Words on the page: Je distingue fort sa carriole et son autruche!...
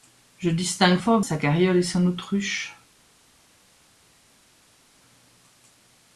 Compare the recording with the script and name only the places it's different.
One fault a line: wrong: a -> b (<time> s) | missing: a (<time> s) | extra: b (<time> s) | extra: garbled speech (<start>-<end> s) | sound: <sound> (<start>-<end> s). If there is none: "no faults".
no faults